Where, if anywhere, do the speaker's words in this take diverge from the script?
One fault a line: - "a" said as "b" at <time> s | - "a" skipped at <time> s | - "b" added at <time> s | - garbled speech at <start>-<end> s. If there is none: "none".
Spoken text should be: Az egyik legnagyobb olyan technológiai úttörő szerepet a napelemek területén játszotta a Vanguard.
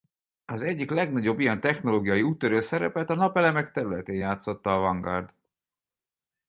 - "olyan" said as "ilyen" at 1.4 s